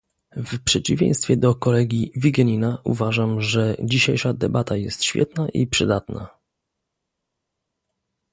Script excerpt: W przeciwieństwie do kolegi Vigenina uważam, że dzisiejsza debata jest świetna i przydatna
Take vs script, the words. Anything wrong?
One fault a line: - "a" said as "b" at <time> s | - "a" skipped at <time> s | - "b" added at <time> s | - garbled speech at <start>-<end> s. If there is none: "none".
none